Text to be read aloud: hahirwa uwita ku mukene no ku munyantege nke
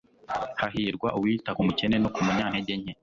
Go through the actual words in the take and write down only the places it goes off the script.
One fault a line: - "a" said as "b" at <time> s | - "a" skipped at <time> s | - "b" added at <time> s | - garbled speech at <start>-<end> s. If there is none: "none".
none